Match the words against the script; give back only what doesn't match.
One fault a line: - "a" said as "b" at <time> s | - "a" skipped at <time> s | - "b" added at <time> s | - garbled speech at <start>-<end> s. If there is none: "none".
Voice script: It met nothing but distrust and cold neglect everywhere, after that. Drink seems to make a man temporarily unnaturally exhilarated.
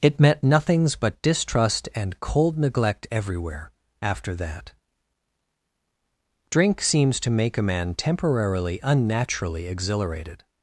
- "nothing" said as "nothings" at 0.4 s